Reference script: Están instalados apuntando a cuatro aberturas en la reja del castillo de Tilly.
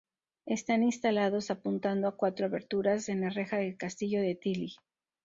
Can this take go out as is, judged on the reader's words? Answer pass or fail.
pass